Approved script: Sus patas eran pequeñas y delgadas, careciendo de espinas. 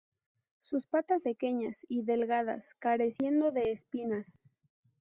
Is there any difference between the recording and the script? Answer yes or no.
yes